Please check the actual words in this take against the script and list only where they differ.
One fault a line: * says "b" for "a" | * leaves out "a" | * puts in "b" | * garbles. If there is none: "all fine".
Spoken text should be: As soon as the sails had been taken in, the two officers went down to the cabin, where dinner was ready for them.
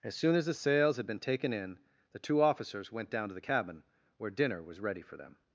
all fine